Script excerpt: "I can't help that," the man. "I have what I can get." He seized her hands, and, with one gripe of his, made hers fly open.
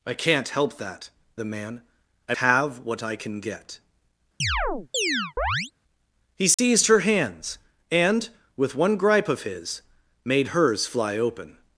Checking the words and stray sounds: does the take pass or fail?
fail